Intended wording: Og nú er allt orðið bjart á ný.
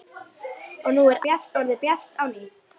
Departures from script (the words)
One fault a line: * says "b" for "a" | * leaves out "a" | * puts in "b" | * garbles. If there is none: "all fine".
* says "bjart" for "allt"